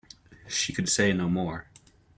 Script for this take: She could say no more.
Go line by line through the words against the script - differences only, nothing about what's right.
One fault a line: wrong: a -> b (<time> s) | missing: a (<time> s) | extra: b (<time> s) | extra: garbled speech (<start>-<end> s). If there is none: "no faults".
no faults